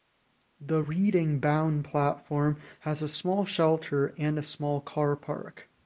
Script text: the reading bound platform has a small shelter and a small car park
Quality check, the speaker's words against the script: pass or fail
pass